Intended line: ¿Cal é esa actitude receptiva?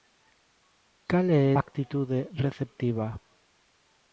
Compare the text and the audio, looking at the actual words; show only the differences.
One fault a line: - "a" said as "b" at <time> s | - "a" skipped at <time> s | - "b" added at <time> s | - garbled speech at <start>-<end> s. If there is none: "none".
- "esa" skipped at 1.4 s